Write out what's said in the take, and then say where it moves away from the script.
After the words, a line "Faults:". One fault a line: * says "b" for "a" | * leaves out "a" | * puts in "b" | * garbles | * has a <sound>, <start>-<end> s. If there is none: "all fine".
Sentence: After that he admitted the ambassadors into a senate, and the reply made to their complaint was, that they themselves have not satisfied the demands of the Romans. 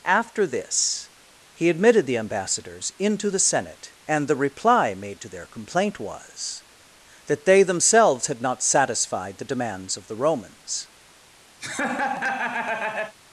After this he admitted the ambassadors into the senate, and the reply made to their complaint was, that they themselves had not satisfied the demands of the Romans.
Faults:
* says "this" for "that"
* says "the" for "a"
* says "had" for "have"
* has a laugh, 11.6-13.1 s